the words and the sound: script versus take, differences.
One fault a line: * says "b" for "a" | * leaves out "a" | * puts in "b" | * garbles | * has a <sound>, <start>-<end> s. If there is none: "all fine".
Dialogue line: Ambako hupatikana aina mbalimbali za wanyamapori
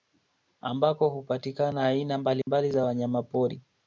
* has a dropout, 2.4-2.5 s